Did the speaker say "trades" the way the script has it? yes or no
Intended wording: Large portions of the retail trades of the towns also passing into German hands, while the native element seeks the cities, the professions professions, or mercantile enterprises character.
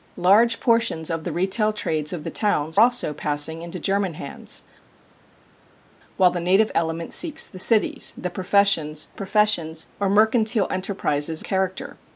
yes